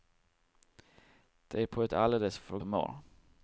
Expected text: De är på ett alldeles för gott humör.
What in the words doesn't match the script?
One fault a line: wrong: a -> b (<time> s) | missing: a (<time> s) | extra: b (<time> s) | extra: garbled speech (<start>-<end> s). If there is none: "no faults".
missing: gott (2.6 s)